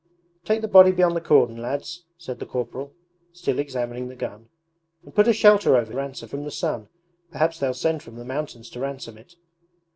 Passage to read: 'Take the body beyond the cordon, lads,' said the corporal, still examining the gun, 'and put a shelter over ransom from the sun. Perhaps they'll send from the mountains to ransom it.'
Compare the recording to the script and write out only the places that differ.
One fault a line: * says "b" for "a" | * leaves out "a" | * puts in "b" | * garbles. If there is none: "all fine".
all fine